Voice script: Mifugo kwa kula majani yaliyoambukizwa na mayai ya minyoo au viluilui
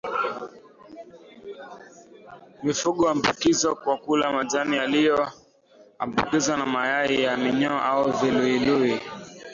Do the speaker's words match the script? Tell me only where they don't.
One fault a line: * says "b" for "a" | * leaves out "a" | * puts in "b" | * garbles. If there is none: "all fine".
* puts in "huambukizwa"